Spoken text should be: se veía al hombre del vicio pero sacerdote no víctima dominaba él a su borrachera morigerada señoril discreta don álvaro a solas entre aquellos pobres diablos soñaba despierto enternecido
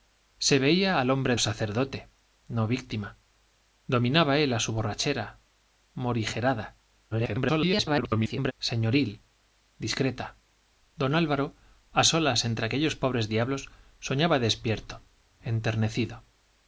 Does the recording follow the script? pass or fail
fail